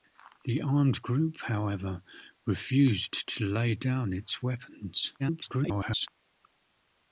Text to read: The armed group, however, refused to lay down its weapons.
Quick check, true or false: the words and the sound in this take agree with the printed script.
false